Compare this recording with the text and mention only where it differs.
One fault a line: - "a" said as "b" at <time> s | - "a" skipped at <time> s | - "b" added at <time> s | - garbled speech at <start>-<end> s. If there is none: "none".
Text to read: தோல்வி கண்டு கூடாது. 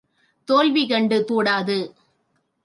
none